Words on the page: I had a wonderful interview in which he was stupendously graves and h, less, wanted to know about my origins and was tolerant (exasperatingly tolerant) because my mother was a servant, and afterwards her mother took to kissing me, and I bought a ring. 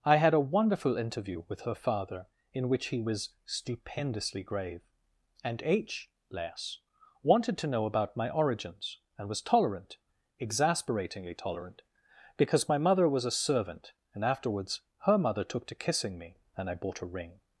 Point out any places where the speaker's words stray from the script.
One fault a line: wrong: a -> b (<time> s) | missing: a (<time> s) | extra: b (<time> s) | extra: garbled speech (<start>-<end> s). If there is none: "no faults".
extra: with her father (1.5 s)
wrong: graves -> grave (4.4 s)